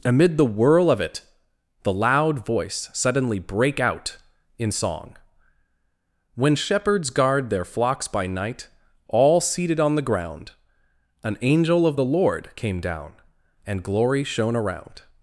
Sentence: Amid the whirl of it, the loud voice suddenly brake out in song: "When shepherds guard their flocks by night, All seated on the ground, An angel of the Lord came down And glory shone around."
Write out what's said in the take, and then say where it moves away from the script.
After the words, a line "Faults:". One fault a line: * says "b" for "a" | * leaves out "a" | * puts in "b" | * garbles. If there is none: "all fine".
Amid the whirl of it, the loud voice suddenly brake out in song: "When shepherds guard their flocks by night, All seated on the ground, An angel of the Lord came down And glory shone around."
Faults:
all fine